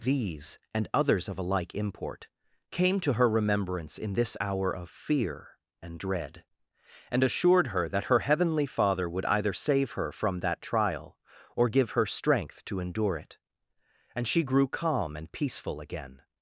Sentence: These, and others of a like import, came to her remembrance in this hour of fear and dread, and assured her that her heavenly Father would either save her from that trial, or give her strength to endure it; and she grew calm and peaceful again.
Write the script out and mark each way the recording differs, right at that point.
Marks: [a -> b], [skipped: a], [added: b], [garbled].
These, and others of a like import, came to her remembrance in this hour of fear and dread, and assured her that her heavenly Father would either save her from that trial, or give her strength to endure it; and she grew calm and peaceful again.